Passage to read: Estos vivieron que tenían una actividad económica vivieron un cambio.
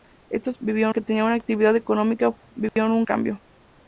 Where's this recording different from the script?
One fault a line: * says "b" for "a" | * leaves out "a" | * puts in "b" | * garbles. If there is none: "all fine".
all fine